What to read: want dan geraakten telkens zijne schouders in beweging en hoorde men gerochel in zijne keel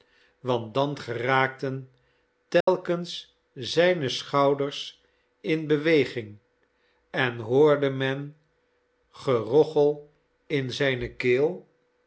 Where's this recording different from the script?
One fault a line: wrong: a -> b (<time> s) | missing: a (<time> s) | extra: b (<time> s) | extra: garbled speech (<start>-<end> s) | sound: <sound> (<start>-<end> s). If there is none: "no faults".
sound: dropout (2.6-2.7 s)